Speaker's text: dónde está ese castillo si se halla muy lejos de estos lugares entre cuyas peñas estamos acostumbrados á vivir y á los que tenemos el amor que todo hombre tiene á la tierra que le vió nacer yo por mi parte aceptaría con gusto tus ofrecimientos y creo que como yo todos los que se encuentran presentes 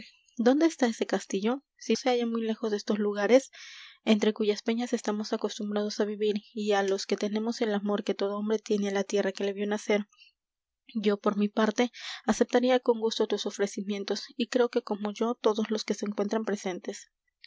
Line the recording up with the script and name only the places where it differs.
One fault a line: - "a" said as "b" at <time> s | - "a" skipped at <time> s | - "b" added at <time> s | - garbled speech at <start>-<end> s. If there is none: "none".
none